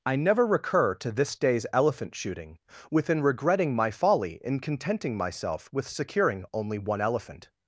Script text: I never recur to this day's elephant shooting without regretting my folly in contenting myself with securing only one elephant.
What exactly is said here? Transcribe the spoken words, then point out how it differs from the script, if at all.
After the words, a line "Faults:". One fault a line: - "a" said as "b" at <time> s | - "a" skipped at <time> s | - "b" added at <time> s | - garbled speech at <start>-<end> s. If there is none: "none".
I never recur to this day's elephant shooting within regretting my folly in contenting myself with securing only one elephant.
Faults:
- "without" said as "within" at 2.9 s